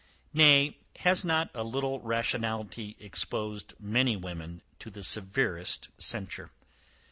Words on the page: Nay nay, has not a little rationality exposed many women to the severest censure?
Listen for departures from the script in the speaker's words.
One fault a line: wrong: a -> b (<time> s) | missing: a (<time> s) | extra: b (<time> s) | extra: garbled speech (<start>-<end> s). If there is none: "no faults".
missing: nay (0.8 s)